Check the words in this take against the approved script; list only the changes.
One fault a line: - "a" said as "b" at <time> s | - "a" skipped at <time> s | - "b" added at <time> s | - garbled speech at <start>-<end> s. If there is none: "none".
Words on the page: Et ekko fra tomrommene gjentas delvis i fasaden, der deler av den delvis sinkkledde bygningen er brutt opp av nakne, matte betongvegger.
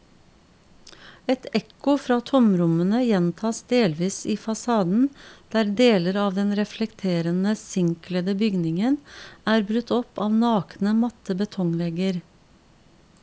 - "delvis" said as "reflekterende" at 6.6 s